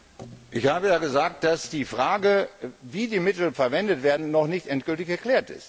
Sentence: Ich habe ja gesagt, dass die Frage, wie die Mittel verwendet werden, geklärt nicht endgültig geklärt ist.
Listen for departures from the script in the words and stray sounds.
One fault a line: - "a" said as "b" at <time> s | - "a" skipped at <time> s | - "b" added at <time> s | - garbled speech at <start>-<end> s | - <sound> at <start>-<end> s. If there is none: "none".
- "geklärt" said as "noch" at 4.3 s